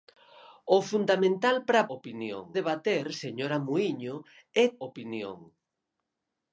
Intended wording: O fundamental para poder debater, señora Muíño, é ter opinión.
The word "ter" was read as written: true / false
false